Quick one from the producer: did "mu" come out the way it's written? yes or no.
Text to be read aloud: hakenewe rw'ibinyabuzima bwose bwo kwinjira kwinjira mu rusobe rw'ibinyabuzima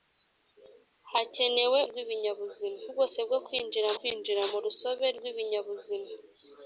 yes